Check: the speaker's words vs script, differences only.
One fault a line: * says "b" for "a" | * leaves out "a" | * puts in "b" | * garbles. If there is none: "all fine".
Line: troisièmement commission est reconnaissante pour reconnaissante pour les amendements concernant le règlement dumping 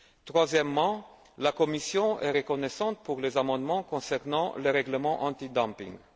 * puts in "la"
* leaves out "reconnaissante pour"
* puts in "anti"